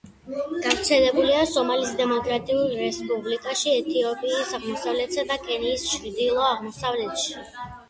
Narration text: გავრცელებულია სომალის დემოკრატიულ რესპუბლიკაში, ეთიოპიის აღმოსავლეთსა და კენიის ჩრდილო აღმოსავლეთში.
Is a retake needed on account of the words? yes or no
no